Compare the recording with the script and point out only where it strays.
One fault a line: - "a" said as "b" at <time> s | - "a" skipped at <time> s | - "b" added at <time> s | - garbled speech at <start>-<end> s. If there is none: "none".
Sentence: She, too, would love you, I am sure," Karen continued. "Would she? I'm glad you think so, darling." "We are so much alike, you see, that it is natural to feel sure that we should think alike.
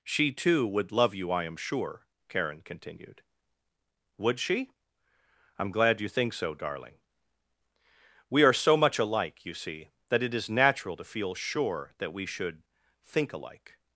none